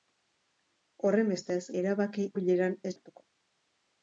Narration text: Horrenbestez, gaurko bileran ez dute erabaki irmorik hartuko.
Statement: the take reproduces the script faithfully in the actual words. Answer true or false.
false